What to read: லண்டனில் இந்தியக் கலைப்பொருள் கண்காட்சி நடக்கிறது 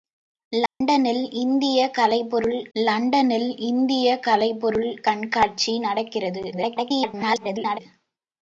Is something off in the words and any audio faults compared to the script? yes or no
yes